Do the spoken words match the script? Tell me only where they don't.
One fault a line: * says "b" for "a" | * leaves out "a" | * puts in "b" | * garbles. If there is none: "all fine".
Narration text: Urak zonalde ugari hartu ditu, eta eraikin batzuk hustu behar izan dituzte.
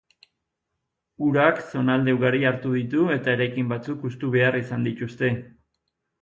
all fine